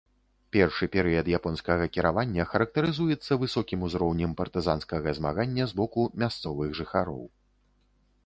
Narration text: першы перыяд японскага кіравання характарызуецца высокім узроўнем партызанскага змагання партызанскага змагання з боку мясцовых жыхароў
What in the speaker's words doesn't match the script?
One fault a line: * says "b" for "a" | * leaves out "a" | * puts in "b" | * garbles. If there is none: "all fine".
* leaves out "партызанскага змагання"